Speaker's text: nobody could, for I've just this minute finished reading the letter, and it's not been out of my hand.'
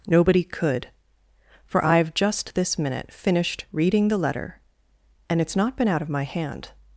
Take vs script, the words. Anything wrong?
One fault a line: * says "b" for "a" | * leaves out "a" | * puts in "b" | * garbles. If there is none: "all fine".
all fine